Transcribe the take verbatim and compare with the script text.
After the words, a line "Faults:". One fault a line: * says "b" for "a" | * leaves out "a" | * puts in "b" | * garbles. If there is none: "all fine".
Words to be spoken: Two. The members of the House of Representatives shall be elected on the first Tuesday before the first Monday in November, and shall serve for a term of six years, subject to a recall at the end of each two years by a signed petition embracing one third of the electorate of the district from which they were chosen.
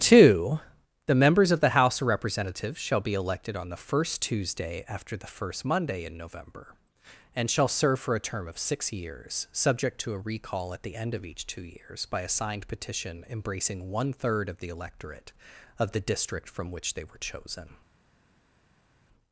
Two. The members of the House of Representatives shall be elected on the first Tuesday after the first Monday in November, and shall serve for a term of six years, subject to a recall at the end of each two years by a signed petition embracing one third of the electorate of the district from which they were chosen.
Faults:
* says "after" for "before"